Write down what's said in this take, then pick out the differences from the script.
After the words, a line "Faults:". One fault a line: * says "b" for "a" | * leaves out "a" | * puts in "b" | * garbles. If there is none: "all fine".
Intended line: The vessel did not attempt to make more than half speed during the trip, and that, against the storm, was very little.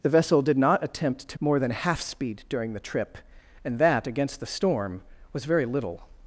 The vessel did not attempt to more than half speed during the trip, and that, against the storm, was very little.
Faults:
* leaves out "make"